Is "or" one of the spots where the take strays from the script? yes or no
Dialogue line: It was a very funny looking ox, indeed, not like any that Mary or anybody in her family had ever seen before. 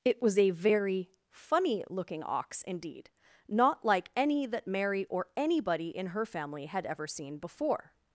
no